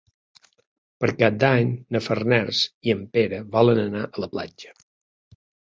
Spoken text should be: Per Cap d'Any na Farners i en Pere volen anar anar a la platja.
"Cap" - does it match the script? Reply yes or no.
yes